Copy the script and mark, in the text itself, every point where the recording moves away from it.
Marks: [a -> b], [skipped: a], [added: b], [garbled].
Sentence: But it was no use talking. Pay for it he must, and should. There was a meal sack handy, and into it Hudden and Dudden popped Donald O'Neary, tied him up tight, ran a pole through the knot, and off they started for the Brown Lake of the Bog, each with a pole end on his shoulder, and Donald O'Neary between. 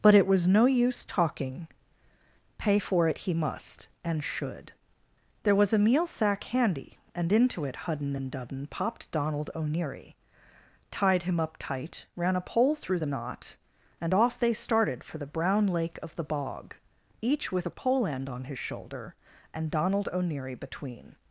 But it was no use talking. Pay for it he must, and should. There was a meal sack handy, and into it Hudden and Dudden popped Donald O'Neary, tied him up tight, ran a pole through the knot, and off they started for the Brown Lake of the Bog, each with a pole end on his shoulder, and Donald O'Neary between.